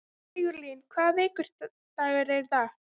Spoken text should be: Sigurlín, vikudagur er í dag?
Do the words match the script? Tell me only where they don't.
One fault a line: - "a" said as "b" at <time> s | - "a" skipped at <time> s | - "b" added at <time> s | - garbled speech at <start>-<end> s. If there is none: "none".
- "hvaða" added at 1.0 s